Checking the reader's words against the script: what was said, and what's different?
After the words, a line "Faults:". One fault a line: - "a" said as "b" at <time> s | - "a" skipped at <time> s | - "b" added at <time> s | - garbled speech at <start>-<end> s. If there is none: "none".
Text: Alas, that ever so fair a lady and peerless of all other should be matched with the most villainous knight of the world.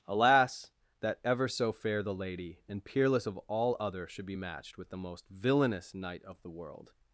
Alas, that ever so fair the lady and peerless of all other should be matched with the most villainous knight of the world.
Faults:
- "a" said as "the" at 2.0 s